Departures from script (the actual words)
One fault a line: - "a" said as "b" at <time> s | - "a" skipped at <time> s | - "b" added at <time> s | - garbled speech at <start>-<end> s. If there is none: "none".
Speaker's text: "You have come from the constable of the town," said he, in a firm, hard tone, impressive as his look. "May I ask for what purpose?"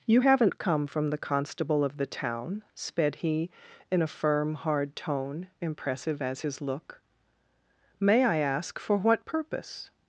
- "have" said as "haven't" at 0.2 s
- "said" said as "sped" at 2.7 s